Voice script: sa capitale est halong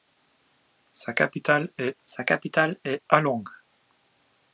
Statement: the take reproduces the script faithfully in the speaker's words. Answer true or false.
false